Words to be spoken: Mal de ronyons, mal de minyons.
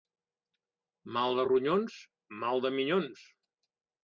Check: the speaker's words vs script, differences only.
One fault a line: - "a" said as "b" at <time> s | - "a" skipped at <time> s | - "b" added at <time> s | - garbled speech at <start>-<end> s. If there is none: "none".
none